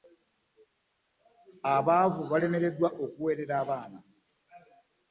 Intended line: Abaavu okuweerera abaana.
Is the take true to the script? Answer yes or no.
no